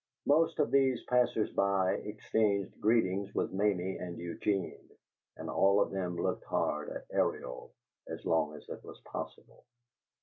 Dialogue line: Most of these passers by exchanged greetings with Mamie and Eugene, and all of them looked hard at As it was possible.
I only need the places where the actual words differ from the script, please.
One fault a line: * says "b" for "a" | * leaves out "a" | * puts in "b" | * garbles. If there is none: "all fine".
* puts in "Ariel as long"